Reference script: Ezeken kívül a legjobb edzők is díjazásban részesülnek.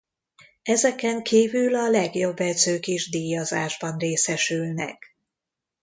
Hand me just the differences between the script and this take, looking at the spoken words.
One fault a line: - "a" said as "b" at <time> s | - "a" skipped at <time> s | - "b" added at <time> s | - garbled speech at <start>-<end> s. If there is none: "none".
none